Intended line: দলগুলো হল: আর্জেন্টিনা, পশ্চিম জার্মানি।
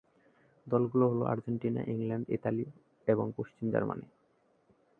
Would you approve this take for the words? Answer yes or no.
no